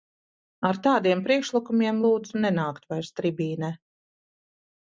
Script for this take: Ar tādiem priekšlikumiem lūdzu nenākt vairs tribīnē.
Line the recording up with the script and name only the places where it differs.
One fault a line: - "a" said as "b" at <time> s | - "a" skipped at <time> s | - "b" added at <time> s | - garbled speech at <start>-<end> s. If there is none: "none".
none